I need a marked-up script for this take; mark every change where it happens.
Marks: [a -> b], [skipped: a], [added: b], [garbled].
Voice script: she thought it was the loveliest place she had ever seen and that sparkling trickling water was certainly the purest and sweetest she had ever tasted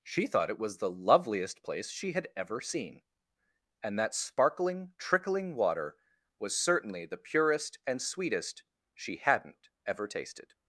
she thought it was the loveliest place she had ever seen and that sparkling trickling water was certainly the purest and sweetest she [had -> hadn't] ever tasted